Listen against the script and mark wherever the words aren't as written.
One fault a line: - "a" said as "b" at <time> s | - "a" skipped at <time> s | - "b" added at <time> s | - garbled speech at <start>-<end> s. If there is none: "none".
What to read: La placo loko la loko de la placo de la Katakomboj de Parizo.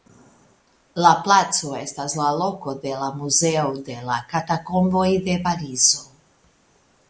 - "loko" said as "estas" at 1.8 s
- "placo" said as "muzeo" at 3.2 s